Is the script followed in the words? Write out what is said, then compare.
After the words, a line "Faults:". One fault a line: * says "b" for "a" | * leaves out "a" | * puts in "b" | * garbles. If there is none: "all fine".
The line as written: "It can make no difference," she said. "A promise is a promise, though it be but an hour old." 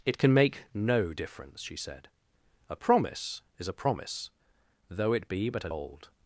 "It can make no difference," she said. "A promise is a promise, though it be but an old."
Faults:
* leaves out "hour"